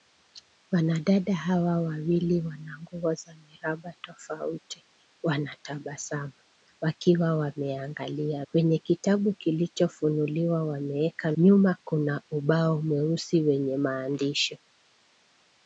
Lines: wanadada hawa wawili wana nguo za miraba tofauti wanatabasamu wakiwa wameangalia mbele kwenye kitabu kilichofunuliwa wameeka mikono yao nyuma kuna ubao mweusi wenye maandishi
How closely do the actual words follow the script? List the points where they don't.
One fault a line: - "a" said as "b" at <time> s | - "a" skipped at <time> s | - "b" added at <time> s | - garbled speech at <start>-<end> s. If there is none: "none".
- "mbele" skipped at 8.4 s
- "mikono yao" skipped at 11.3 s